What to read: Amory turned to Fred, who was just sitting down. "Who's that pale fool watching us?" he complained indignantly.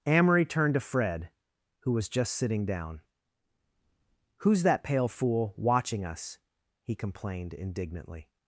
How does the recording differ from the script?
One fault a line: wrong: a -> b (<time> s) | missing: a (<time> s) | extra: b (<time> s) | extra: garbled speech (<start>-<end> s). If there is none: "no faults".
no faults